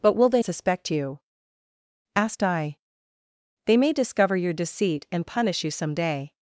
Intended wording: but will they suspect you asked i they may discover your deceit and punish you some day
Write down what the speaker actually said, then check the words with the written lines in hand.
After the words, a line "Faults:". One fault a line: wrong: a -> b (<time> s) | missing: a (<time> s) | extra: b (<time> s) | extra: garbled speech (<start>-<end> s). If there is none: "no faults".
but will they suspect you asked i they may discover your deceit and punish you some day
Faults:
no faults